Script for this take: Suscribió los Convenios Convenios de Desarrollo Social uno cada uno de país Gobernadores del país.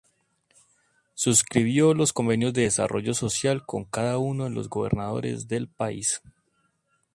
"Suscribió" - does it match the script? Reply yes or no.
yes